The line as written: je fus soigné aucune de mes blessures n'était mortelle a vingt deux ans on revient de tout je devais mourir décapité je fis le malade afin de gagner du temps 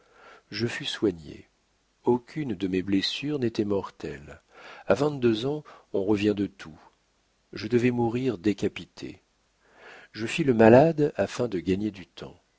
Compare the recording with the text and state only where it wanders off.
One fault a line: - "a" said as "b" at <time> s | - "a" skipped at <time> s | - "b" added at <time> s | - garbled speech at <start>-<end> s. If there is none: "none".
none